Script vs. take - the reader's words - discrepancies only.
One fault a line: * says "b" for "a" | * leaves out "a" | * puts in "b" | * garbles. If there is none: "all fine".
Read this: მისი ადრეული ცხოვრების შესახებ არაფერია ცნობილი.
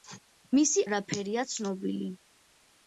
* leaves out "ადრეული ცხოვრების შესახებ"